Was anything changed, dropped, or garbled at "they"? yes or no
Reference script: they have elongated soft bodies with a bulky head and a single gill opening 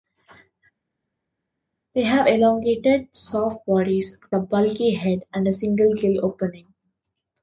no